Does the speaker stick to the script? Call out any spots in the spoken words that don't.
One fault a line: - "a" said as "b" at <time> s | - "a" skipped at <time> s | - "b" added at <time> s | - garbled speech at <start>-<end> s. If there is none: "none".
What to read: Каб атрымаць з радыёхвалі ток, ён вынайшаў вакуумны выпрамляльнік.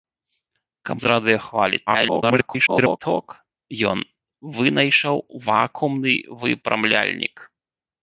- "атрымаць" skipped at 1.0 s
- garbled speech at 1.9-3.0 s